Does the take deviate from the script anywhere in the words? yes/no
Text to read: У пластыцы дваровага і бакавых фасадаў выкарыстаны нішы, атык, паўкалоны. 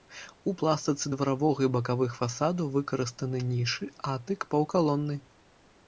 no